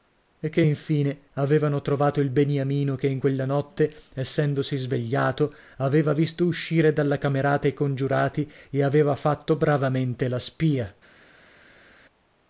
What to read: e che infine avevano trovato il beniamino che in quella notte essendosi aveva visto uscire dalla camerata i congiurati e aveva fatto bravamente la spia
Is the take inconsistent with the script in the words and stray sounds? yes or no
yes